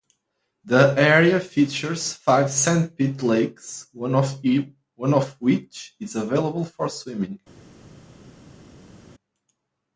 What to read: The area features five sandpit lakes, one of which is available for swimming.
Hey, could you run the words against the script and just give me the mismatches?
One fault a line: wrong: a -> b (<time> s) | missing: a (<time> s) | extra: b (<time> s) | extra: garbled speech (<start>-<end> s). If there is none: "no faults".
no faults